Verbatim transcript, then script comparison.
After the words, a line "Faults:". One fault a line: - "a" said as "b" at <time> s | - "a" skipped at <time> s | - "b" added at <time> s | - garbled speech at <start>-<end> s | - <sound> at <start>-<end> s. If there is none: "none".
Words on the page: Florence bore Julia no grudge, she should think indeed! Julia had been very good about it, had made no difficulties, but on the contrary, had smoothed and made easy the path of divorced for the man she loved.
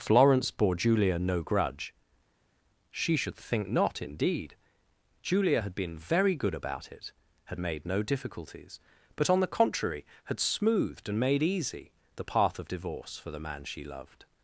Florence bore Julia no grudge, she should think not, indeed! Julia had been very good about it, had made no difficulties, but on the contrary, had smoothed and made easy the path of divorce for the man she loved.
Faults:
- "not" added at 3.7 s
- "divorced" said as "divorce" at 12.7 s